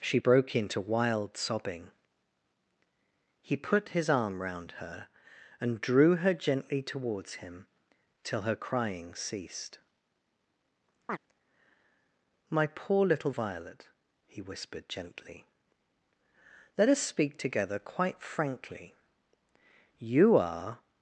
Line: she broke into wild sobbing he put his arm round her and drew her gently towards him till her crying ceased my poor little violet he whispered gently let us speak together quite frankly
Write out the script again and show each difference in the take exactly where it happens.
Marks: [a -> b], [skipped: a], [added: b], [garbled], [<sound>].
she broke into wild sobbing he put his arm round her and drew her gently towards him till her crying ceased [chirp] my poor little violet he whispered gently let us speak together quite frankly [added: you are]